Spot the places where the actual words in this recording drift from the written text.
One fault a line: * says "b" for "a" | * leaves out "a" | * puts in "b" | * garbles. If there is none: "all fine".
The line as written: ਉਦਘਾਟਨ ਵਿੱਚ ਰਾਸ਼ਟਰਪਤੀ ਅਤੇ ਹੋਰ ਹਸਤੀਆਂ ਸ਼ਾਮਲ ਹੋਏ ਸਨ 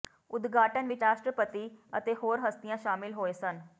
all fine